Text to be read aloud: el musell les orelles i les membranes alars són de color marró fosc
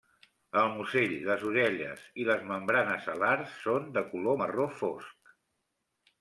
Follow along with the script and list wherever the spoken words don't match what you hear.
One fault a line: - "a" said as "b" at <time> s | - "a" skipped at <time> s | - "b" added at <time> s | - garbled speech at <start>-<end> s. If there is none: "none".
none